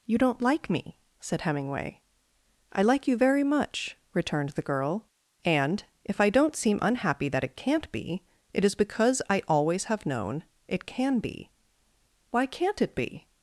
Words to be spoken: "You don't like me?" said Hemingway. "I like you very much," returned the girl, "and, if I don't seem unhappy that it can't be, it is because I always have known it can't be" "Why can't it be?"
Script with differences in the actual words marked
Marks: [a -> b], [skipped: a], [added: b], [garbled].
"You don't like me?" said Hemingway. "I like you very much," returned the girl, "and, if I don't seem unhappy that it can't be, it is because I always have known it [can't -> can] be" "Why can't it be?"